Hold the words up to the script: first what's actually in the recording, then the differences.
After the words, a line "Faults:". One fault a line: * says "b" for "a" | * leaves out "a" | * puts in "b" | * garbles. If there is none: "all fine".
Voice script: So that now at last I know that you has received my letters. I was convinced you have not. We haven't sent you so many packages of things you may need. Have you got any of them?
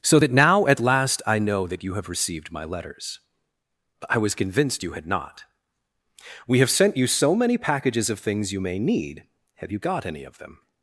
So that now at last I know that you have received my letters. I was convinced you had not. We have sent you so many packages of things you may need. Have you got any of them?
Faults:
* says "have" for "has"
* says "had" for "have"
* says "have" for "haven't"